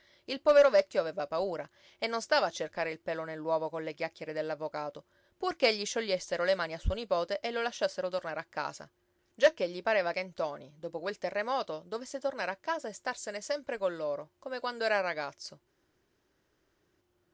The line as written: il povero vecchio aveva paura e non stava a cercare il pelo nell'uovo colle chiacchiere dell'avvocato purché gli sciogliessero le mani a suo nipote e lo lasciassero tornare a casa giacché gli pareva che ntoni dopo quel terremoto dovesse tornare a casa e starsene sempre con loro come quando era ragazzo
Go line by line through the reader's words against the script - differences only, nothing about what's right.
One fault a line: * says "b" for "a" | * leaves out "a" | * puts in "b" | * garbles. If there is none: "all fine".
all fine